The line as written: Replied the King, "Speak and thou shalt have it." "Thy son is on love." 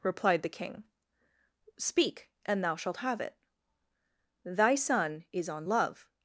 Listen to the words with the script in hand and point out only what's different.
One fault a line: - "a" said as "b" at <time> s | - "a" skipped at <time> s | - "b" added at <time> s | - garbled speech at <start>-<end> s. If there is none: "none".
none